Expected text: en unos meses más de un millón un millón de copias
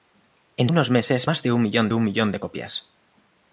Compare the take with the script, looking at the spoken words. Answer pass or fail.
pass